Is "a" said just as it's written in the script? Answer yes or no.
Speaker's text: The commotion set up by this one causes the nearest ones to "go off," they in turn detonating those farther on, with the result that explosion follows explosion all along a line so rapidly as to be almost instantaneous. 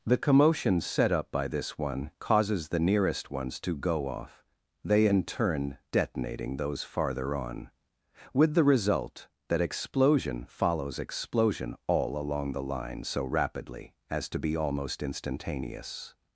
no